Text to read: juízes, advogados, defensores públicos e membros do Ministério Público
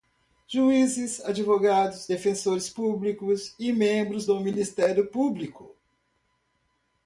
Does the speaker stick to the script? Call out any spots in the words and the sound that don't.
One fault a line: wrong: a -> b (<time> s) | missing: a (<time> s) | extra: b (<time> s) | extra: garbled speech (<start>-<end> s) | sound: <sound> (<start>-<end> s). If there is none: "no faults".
no faults